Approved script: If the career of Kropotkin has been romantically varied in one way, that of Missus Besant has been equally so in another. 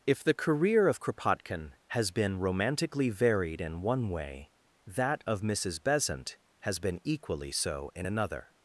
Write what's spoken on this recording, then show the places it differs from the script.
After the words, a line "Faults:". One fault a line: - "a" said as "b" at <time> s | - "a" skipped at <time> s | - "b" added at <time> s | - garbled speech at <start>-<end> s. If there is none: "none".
If the career of Kropotkin has been romantically varied in one way, that of Missus Besant has been equally so in another.
Faults:
none